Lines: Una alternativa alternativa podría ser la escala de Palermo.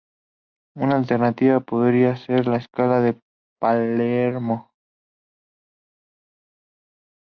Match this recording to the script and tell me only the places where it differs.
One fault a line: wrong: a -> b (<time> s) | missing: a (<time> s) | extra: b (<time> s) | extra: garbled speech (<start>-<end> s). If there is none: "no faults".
missing: alternativa (1.6 s)